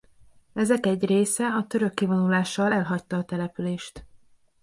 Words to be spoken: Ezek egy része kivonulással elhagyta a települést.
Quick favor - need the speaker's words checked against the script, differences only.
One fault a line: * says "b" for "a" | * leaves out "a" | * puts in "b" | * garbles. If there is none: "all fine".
* puts in "a török"